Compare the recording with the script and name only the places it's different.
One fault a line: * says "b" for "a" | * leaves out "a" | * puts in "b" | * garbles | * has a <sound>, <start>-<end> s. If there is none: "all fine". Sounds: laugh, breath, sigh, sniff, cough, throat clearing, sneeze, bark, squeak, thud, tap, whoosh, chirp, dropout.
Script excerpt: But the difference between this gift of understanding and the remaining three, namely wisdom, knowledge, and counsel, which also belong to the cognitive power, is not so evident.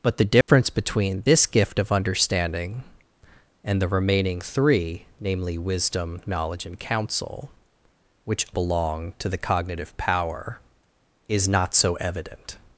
* has a dropout, 0.4-0.5 s
* leaves out "also"